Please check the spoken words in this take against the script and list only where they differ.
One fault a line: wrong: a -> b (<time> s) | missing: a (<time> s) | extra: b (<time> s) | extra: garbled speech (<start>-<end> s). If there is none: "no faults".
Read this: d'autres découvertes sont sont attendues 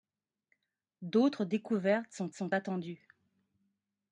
no faults